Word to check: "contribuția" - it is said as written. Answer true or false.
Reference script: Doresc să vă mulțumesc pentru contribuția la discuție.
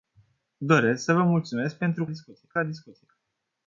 false